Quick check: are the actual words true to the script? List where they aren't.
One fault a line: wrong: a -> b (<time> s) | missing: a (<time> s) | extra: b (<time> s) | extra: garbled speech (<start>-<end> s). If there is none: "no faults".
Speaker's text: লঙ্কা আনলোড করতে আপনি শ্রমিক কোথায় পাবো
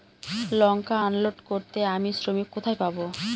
wrong: আপনি -> আমি (1.9 s)